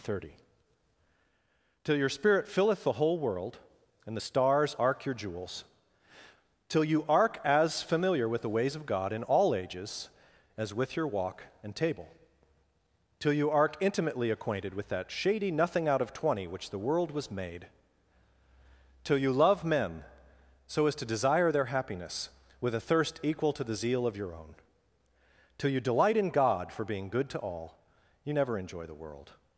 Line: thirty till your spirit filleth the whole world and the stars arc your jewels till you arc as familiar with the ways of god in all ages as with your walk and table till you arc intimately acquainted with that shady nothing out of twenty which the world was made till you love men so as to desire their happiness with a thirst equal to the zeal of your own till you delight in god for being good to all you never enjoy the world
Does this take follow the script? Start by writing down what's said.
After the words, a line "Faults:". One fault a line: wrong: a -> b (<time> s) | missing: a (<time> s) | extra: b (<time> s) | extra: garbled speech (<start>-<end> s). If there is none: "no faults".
thirty till your spirit filleth the whole world and the stars arc your jewels till you arc as familiar with the ways of god in all ages as with your walk and table till you arc intimately acquainted with that shady nothing out of twenty which the world was made till you love men so as to desire their happiness with a thirst equal to the zeal of your own till you delight in god for being good to all you never enjoy the world
Faults:
no faults